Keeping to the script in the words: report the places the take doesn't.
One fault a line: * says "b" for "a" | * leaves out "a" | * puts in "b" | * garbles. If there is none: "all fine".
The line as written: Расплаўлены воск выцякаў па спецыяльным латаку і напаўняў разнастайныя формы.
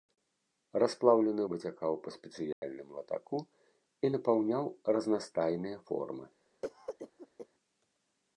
* leaves out "воск"